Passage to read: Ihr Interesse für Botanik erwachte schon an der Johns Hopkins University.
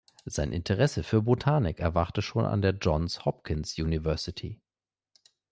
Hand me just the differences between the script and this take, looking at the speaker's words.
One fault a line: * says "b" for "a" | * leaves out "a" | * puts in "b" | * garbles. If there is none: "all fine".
* says "Sein" for "Ihr"